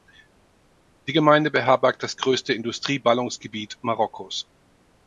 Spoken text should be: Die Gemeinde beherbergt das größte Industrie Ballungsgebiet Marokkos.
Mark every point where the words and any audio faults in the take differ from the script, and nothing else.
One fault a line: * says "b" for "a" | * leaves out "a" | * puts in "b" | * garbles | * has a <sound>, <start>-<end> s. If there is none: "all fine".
all fine